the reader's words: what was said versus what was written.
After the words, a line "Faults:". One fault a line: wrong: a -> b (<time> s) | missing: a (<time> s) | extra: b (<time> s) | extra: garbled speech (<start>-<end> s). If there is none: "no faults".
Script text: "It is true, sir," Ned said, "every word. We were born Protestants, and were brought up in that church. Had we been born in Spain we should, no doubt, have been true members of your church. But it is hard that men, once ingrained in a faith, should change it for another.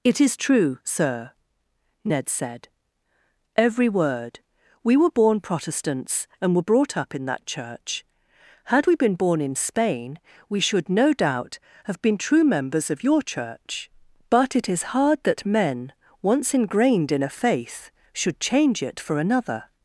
"It is true, sir," Ned said, "every word. We were born Protestants, and were brought up in that church. Had we been born in Spain we should, no doubt, have been true members of your church. But it is hard that men, once ingrained in a faith, should change it for another.
Faults:
no faults